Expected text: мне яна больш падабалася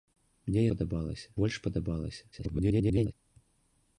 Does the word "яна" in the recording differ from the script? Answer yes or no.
yes